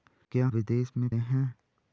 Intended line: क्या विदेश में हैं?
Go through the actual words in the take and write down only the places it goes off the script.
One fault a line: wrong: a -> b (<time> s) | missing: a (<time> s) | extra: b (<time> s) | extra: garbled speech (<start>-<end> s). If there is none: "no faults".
no faults